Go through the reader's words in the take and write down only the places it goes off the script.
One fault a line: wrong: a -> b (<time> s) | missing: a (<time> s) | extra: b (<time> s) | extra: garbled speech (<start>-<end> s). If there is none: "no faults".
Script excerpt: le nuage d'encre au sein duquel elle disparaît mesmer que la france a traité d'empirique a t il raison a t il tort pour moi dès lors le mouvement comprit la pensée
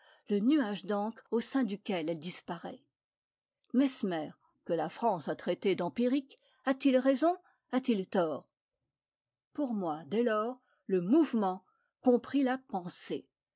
no faults